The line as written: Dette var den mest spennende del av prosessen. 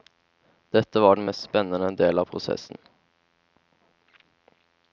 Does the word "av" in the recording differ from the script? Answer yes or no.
no